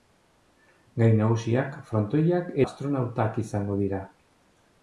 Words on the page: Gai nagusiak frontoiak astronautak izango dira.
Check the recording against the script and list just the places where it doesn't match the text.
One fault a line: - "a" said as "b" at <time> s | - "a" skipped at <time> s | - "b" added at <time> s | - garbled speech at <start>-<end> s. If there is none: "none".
none